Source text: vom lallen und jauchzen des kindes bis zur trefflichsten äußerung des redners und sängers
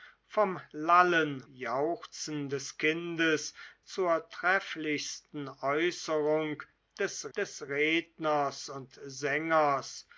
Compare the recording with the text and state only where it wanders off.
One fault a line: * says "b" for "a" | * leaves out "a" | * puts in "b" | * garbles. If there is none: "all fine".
* leaves out "und"
* leaves out "bis"
* puts in "des"